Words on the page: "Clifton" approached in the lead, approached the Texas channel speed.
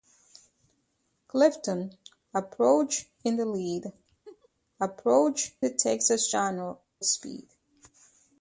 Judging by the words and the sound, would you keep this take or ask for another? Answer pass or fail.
fail